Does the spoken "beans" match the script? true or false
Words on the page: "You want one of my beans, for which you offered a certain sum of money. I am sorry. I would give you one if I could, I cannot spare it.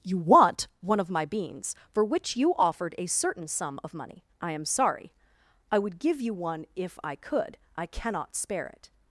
true